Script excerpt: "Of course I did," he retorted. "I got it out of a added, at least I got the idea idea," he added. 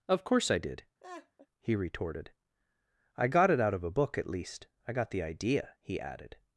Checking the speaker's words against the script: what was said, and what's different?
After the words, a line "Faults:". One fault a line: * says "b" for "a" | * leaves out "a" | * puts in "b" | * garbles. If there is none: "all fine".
"Of course I did," he retorted. "I got it out of a book, at least I got the idea," he added.
Faults:
* says "book" for "added"
* leaves out "idea"